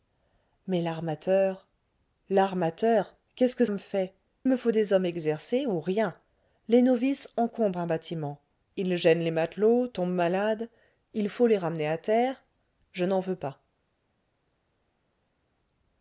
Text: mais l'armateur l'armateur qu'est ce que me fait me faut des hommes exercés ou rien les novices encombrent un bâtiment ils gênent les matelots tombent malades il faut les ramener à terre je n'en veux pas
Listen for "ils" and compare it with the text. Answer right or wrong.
right